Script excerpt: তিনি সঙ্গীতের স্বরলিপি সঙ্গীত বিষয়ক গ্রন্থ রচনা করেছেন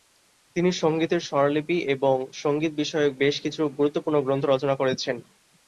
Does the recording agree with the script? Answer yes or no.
no